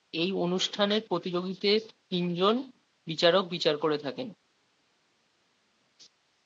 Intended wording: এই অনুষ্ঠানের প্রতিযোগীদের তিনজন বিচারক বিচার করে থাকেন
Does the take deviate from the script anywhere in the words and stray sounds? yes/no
no